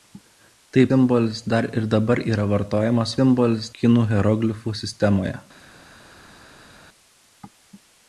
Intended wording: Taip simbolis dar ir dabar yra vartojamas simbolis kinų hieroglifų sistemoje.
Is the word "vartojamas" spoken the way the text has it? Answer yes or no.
yes